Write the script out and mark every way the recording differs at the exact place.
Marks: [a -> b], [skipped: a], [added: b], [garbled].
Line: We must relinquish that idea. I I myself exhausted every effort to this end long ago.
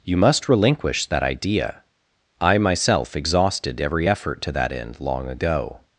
[We -> You] must relinquish that idea. I [skipped: I] myself exhausted every effort to [this -> that] end long ago.